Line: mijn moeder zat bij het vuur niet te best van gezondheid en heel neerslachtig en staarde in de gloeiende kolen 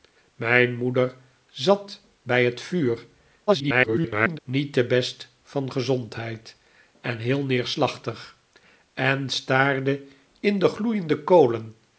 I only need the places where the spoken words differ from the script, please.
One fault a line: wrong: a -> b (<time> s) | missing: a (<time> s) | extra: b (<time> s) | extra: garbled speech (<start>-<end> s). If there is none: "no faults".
extra: garbled speech (3.5-4.4 s)